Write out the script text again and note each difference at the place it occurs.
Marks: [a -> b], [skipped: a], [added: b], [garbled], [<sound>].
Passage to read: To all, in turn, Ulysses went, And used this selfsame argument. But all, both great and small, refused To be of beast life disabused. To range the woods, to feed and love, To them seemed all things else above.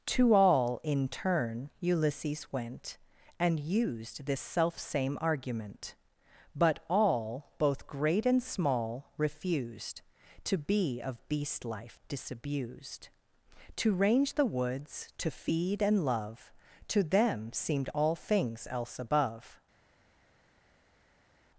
To all, in turn, Ulysses went, And used this selfsame argument. But all, both great and small, refused To be of beast life disabused. To range the woods, to feed and love, To them seemed all things else above.